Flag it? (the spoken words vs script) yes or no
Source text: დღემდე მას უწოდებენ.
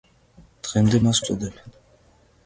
no